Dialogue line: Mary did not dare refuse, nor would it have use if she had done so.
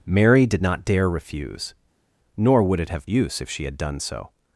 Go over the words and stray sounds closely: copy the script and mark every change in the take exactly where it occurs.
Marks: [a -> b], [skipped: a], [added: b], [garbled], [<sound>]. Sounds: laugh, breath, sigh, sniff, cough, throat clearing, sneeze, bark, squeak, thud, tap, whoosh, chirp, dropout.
Mary did not dare refuse, nor would it have use if she had done so.